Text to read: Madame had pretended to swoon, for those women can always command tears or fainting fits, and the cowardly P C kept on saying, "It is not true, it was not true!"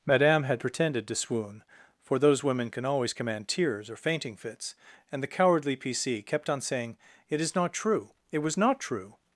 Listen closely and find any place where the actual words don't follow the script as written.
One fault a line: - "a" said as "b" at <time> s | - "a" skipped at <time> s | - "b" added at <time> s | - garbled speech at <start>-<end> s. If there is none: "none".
none